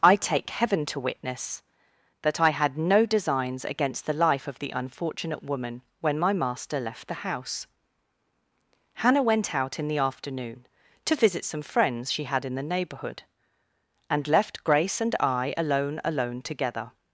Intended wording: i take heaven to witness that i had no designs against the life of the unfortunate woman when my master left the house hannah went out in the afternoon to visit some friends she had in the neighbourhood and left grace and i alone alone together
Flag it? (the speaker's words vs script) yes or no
no